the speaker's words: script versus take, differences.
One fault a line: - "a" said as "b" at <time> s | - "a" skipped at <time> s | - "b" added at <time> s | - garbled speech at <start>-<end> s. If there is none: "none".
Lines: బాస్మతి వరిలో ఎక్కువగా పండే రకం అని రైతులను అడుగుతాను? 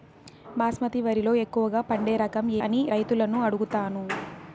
none